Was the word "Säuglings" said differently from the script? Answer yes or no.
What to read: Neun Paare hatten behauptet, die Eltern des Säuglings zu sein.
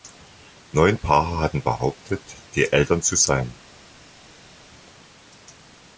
yes